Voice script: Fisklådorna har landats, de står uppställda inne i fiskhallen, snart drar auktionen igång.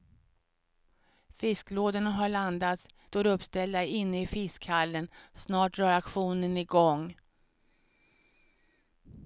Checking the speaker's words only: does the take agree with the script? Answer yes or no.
no